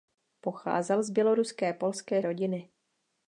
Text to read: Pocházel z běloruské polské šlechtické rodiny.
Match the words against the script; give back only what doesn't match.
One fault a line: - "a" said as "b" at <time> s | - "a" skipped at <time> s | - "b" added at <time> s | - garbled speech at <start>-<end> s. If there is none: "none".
- "šlechtické" skipped at 2.2 s